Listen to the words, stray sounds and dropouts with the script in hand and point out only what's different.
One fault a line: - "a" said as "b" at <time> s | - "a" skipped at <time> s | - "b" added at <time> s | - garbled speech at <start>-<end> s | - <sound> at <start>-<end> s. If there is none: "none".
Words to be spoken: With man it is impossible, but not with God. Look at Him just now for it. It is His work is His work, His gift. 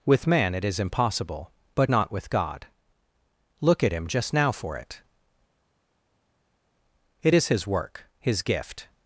- "is His work" skipped at 8.0 s